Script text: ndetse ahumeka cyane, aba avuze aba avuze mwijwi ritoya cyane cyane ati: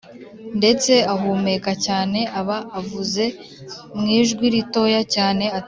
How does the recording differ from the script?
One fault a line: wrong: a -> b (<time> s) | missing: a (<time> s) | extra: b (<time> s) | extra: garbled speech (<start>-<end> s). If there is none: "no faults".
missing: aba avuze (3.2 s)
missing: cyane (5.4 s)